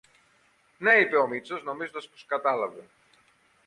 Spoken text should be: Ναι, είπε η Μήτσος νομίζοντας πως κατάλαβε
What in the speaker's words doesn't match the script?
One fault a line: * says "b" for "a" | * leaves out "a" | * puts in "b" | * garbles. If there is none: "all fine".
* says "ο" for "η"